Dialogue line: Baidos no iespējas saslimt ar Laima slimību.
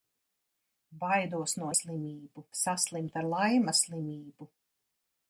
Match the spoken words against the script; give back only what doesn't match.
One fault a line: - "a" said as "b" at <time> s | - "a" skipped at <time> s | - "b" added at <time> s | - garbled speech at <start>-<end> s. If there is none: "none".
- "iespējas" said as "slimību" at 1.8 s